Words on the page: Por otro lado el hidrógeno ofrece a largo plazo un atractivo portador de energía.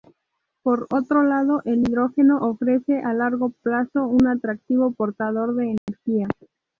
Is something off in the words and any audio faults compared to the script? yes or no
yes